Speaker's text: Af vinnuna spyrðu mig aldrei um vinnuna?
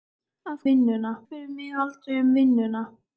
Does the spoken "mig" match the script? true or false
true